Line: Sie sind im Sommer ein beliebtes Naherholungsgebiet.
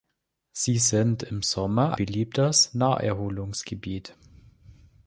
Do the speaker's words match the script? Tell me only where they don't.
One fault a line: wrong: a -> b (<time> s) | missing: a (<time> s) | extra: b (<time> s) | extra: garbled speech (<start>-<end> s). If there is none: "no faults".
missing: ein (1.9 s)